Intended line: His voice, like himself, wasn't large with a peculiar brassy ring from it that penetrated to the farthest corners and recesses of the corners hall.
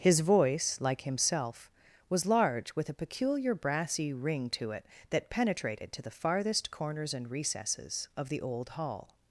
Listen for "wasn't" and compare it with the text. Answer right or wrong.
wrong